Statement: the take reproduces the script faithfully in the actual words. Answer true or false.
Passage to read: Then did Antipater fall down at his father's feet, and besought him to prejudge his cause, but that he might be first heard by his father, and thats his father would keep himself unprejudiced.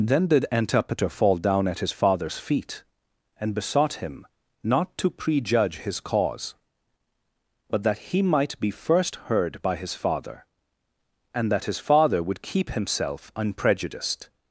false